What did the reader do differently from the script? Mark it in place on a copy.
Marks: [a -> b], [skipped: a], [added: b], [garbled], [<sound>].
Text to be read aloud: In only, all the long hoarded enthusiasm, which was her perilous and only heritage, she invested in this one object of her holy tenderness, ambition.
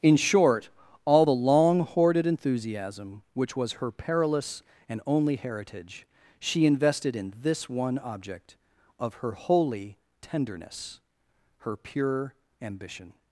In [only, -> short] all the long hoarded enthusiasm, which was her perilous and only heritage, she invested in this one object of her holy tenderness, [added: her pure] ambition.